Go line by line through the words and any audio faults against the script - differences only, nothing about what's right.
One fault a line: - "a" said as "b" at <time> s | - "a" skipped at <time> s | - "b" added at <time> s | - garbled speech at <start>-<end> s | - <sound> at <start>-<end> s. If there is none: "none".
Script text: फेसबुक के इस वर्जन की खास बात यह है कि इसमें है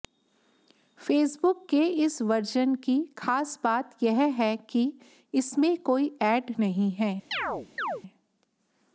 - "कोई ऐड नहीं" added at 5.8 s
- chirp at 7.3-8.0 s